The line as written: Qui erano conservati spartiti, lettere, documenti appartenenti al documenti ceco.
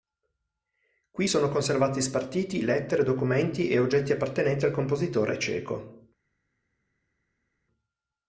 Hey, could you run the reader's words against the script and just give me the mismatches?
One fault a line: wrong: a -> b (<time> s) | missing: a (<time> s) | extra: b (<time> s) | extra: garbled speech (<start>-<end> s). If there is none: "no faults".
wrong: erano -> sono (1.2 s)
extra: e oggetti (3.7 s)
wrong: documenti -> compositore (4.7 s)